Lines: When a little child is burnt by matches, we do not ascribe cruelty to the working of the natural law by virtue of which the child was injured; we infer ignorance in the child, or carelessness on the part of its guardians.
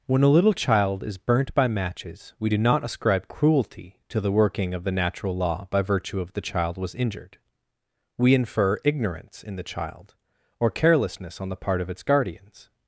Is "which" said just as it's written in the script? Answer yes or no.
no